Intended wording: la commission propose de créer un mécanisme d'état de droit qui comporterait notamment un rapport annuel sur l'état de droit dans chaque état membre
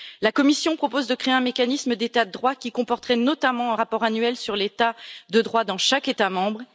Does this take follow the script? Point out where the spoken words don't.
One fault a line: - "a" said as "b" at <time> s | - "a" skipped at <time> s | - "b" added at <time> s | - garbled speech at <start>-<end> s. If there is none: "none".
none